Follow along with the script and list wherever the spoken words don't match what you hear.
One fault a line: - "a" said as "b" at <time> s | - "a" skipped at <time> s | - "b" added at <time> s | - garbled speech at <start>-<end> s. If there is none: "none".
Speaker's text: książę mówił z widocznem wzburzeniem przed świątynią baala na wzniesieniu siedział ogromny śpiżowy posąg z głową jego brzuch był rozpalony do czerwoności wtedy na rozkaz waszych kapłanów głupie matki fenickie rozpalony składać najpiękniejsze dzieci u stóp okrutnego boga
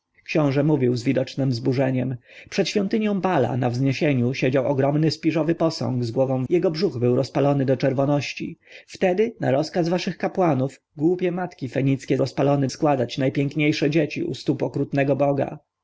none